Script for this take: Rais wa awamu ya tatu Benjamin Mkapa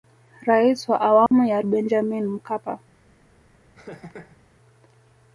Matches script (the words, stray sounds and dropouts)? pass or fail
fail